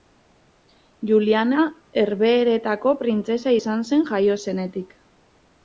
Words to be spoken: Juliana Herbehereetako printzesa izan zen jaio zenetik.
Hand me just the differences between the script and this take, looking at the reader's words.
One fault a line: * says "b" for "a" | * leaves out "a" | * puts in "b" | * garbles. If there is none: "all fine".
all fine